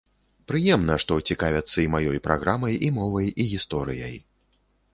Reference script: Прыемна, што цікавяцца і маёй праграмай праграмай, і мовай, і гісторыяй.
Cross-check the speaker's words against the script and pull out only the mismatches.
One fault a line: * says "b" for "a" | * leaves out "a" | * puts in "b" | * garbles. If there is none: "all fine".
* leaves out "праграмай"